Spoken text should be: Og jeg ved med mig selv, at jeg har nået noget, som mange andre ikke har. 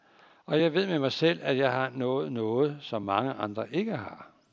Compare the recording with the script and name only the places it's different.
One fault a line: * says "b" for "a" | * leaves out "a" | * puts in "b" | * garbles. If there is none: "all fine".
all fine